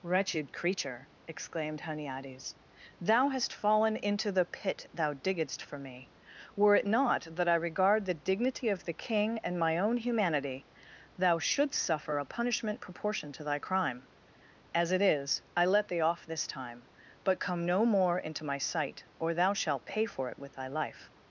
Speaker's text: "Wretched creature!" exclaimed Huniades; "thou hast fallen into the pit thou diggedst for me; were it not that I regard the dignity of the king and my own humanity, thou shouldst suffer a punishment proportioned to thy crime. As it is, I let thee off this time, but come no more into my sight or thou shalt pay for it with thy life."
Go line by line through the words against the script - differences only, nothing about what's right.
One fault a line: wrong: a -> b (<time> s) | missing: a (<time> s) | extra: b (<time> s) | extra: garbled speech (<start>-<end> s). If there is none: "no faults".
no faults